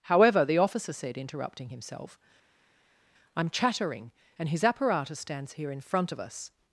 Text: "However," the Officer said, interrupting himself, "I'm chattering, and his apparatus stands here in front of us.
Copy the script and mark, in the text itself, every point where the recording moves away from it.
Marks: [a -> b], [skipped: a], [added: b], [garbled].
"However," the Officer said, interrupting himself, "I'm chattering, and his apparatus stands here in front of us.